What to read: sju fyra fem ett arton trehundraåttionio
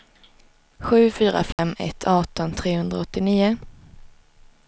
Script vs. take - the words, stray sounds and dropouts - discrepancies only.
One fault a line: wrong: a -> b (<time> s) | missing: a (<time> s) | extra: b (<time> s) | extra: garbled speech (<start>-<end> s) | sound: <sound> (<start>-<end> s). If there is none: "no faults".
sound: dropout (1.5-1.6 s)